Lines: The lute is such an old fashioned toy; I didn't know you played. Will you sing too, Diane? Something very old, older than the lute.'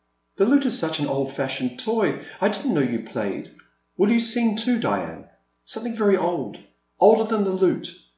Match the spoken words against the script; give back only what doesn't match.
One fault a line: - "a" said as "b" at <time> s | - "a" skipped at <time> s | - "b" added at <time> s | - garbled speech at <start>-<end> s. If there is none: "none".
none